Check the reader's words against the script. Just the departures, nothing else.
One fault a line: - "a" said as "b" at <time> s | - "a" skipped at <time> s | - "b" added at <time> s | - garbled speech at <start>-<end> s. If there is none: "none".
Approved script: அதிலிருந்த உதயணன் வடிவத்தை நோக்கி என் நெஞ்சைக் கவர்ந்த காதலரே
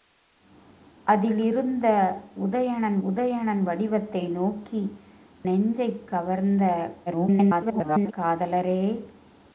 - "உதயணன்" added at 3.1 s
- "என்" skipped at 4.8 s
- garbled speech at 7.1-8.1 s